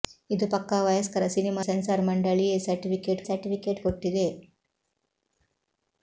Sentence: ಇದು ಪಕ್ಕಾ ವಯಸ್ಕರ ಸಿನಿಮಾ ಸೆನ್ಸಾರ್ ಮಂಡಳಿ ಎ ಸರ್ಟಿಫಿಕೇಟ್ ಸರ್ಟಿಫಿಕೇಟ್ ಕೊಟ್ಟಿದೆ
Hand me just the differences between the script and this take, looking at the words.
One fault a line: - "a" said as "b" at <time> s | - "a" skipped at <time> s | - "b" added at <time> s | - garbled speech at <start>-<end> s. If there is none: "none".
none